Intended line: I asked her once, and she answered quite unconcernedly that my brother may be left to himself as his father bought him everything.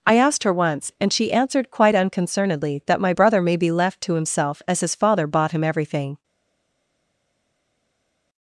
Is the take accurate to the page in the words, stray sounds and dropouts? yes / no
yes